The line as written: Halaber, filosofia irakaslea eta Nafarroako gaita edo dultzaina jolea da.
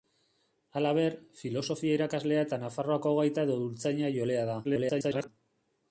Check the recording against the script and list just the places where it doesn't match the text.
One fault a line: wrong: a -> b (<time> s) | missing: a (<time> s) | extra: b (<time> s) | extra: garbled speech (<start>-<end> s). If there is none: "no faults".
extra: garbled speech (4.6-5.3 s)